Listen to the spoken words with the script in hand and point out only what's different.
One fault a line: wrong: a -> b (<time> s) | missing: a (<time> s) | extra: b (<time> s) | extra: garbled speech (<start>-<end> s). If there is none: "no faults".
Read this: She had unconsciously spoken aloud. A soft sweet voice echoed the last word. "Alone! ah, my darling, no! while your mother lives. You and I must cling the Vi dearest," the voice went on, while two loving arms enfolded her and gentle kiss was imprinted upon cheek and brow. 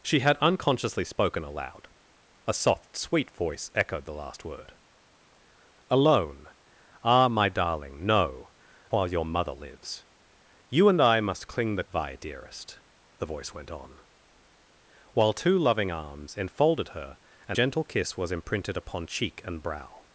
no faults